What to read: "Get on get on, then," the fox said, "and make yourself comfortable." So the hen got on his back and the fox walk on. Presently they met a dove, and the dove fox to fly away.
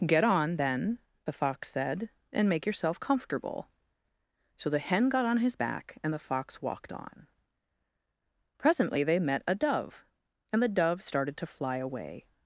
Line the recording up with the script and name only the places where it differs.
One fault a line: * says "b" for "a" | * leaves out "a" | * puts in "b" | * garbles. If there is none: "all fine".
* leaves out "get on"
* says "walked" for "walk"
* says "started" for "fox"